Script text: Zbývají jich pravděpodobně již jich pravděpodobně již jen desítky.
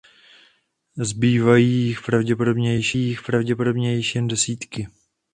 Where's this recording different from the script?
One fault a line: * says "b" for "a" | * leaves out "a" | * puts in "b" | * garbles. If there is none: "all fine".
all fine